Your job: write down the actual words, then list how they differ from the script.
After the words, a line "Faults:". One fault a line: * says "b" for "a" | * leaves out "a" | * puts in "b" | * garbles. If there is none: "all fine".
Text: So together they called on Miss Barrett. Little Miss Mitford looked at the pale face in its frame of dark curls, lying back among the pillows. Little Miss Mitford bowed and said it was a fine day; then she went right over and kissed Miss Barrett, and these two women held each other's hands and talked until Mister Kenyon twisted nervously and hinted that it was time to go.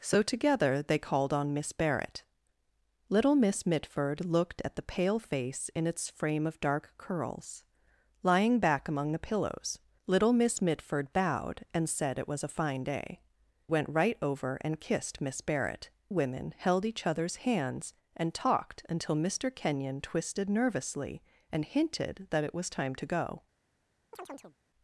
So together they called on Miss Barrett. Little Miss Mitford looked at the pale face in its frame of dark curls, lying back among the pillows. Little Miss Mitford bowed and said it was a fine day; went right over and kissed Miss Barrett, women held each other's hands and talked until Mister Kenyon twisted nervously and hinted that it was time to go.
Faults:
* leaves out "then she"
* leaves out "and these two"